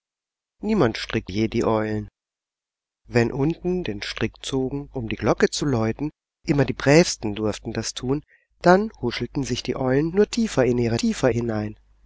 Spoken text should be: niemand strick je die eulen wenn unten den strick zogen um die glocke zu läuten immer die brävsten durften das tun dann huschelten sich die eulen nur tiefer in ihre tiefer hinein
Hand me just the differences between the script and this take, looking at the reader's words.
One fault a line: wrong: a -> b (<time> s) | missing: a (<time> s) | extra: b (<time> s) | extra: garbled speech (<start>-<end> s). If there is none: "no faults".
no faults